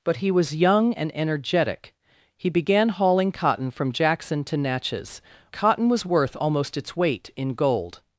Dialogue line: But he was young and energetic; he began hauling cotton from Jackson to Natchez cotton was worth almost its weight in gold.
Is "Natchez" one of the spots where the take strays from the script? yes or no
no